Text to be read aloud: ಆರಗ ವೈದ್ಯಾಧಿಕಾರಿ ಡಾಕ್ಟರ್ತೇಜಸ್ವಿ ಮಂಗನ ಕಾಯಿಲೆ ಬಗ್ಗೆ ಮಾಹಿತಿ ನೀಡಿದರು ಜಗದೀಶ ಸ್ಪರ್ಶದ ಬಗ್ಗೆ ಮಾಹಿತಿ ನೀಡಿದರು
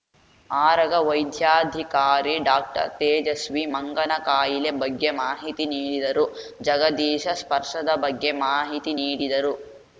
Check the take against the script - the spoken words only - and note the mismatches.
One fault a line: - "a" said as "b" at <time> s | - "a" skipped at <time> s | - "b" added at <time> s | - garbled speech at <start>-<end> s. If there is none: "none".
none